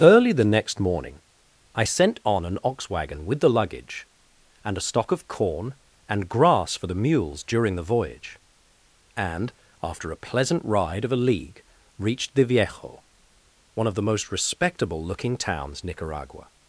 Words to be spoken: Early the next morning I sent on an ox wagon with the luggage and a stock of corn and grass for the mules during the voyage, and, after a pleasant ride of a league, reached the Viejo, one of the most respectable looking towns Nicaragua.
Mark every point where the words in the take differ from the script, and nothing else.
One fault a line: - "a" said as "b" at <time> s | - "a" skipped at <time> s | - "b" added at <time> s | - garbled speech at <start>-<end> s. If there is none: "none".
none